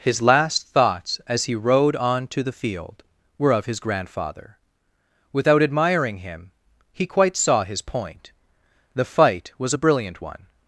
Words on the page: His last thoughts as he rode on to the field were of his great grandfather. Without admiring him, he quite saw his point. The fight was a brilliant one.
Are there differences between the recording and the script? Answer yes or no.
yes